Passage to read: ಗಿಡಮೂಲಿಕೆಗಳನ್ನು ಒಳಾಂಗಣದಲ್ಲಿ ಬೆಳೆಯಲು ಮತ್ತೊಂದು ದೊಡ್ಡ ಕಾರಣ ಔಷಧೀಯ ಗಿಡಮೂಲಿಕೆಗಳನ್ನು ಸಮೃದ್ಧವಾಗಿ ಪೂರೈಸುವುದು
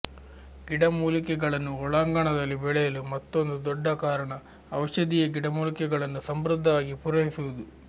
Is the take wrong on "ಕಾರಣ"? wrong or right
right